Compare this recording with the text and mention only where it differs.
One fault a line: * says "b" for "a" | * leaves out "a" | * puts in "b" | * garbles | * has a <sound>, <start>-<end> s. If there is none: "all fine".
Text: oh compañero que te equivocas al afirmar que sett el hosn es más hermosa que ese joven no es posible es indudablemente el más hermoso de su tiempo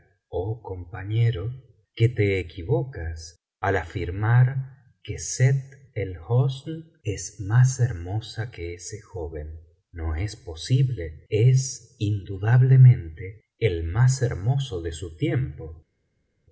all fine